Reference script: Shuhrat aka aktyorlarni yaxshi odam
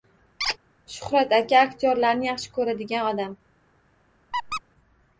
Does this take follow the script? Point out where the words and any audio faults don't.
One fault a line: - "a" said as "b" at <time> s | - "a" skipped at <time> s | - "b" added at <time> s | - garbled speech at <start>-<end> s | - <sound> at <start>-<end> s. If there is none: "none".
- squeak at 0.4-0.6 s
- "ko‘radigan" added at 2.6 s
- squeak at 4.3-4.6 s